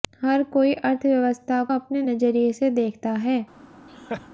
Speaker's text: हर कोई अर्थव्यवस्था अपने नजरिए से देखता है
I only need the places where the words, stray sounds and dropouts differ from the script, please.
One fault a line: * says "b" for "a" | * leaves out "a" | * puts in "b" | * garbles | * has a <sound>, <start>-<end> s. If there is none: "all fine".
* has a laugh, 3.9-4.3 s